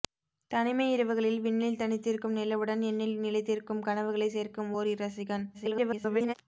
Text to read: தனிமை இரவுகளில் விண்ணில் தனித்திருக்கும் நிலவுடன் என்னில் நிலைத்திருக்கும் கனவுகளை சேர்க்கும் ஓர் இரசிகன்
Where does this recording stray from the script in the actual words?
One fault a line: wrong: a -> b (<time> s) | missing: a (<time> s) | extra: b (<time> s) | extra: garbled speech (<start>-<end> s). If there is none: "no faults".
extra: garbled speech (5.5-6.3 s)